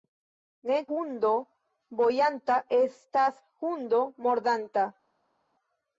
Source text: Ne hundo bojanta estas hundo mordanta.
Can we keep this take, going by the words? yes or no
yes